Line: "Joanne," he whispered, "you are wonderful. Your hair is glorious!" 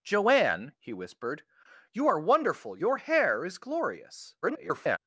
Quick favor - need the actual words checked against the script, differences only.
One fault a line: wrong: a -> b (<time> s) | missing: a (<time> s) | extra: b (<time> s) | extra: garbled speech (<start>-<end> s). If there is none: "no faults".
extra: garbled speech (4.4-5.0 s)